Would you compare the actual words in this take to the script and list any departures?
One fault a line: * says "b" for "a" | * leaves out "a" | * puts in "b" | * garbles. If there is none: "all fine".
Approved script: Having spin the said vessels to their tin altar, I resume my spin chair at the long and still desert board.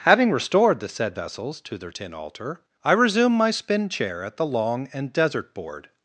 * says "restored" for "spin"
* leaves out "still"